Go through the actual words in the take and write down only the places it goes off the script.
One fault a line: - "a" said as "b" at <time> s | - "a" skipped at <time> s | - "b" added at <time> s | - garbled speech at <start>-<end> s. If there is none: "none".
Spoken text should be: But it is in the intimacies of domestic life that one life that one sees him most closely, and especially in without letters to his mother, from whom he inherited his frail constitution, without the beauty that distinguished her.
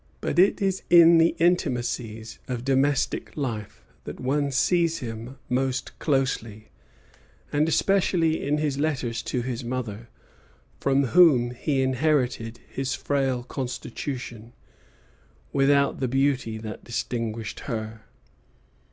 - "life that one" skipped at 4.5 s
- "without" said as "his" at 8.6 s